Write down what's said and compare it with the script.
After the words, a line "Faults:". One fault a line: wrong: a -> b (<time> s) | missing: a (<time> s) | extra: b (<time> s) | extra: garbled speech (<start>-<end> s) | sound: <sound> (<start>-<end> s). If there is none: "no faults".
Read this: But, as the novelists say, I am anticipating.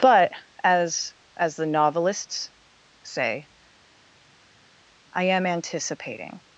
But, as as the novelists say, I am anticipating.
Faults:
extra: as (1.3 s)